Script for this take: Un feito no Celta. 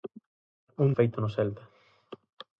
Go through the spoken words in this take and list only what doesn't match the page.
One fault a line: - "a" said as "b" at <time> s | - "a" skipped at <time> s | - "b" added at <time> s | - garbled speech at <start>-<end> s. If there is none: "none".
none